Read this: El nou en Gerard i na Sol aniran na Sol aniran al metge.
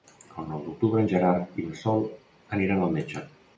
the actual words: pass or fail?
fail